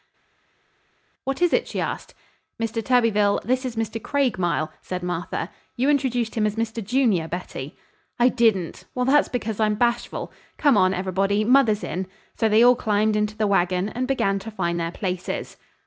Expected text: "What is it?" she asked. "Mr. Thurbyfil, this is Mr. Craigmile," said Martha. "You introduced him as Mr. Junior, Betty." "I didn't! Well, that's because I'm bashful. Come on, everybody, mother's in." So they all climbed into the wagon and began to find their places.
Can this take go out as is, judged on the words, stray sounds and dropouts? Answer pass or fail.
pass